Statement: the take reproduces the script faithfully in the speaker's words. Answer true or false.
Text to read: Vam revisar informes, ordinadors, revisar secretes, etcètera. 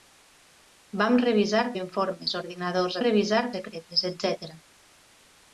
true